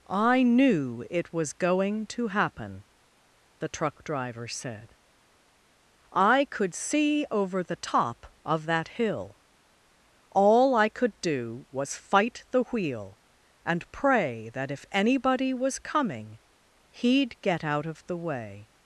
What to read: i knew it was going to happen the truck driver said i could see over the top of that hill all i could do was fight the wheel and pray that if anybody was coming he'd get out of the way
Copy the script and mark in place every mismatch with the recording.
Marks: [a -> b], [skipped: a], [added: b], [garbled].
i knew it was going to happen the truck driver said i could see over the top of that hill all i could do was fight the wheel and pray that if anybody was coming he'd get out of the way